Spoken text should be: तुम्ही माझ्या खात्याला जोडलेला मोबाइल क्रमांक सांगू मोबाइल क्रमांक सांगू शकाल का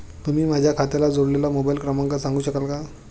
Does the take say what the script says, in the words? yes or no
no